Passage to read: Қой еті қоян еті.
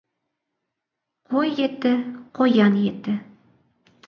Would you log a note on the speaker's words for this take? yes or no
no